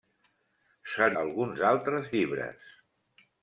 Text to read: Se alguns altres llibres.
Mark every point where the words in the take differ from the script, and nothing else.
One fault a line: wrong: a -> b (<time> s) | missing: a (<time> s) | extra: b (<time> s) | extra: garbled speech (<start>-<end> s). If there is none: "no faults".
no faults